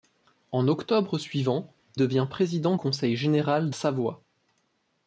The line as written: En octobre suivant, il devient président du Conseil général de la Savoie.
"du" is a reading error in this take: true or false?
true